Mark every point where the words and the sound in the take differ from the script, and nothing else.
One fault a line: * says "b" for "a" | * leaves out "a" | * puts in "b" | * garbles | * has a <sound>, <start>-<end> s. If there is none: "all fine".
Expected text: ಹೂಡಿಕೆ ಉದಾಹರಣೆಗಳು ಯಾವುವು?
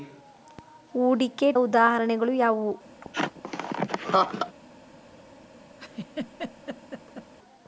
* has a laugh, 3.0-4.6 s
* has a laugh, 5.8-7.3 s